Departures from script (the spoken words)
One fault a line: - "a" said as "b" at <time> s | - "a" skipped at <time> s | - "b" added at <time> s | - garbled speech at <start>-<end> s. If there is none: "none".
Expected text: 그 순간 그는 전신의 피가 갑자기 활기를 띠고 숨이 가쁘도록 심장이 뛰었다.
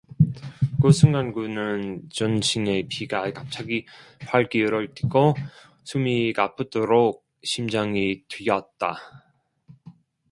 none